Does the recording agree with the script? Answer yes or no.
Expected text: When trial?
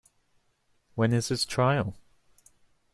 no